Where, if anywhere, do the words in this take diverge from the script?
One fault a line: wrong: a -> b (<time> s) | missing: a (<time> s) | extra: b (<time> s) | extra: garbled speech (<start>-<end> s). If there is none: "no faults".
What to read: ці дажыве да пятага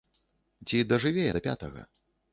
no faults